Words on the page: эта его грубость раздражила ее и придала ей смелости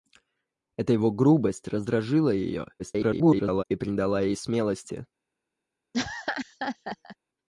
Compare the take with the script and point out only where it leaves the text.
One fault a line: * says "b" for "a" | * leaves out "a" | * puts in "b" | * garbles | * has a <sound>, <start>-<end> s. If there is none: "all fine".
* garbles
* has a laugh, 5.9-7.2 s